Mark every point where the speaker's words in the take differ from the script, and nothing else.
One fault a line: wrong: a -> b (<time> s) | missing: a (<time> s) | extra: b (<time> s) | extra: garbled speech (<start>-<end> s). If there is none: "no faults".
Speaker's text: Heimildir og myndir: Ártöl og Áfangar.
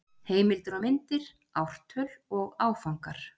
no faults